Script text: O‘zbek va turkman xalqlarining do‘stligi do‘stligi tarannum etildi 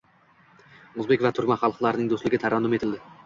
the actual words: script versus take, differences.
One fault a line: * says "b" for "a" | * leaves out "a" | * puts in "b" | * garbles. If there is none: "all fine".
* leaves out "do‘stligi"